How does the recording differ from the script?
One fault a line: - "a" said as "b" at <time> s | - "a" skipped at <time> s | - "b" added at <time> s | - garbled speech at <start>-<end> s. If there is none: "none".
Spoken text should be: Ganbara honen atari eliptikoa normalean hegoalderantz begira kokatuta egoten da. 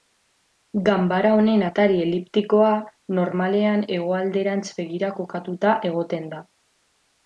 none